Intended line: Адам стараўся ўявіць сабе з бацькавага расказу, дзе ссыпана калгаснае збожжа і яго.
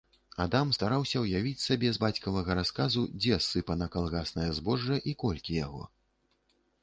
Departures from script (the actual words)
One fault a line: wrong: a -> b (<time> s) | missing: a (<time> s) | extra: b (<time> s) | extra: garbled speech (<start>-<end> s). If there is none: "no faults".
extra: колькі (5.2 s)